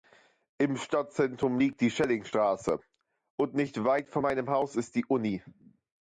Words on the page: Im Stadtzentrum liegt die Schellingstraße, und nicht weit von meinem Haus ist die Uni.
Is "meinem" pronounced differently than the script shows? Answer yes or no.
no